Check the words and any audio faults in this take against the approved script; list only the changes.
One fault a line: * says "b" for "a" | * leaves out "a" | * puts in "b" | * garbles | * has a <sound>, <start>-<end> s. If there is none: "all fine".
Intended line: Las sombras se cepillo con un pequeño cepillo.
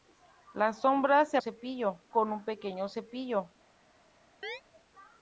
* has a chirp, 4.4-4.6 s